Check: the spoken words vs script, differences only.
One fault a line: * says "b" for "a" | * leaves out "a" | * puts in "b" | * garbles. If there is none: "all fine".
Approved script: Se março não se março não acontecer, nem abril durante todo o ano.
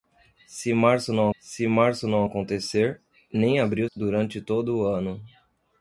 all fine